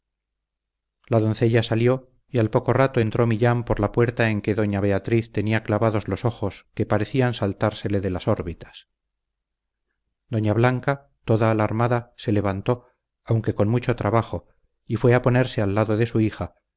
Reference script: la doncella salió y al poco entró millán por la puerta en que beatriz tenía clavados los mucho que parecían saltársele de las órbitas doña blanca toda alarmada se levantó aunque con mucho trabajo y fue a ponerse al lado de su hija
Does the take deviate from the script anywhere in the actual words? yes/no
yes